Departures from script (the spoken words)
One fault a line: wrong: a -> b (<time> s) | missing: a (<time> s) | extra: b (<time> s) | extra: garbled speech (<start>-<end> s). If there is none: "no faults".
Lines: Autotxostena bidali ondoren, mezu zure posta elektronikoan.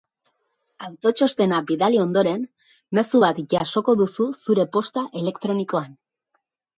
extra: bat jasoko duzu (3.2 s)